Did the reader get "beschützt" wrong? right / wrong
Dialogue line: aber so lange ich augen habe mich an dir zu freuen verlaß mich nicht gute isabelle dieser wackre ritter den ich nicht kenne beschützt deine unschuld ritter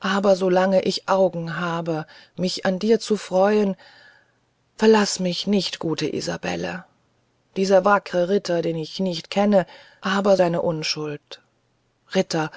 wrong